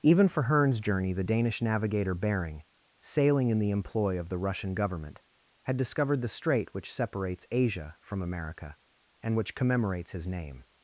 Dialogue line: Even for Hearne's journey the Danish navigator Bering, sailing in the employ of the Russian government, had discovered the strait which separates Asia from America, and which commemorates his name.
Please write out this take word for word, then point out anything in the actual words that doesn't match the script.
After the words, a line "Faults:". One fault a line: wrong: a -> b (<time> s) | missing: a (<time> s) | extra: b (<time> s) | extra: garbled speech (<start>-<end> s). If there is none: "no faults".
Even for Hearne's journey the Danish navigator Bering, sailing in the employ of the Russian government, had discovered the strait which separates Asia from America, and which commemorates his name.
Faults:
no faults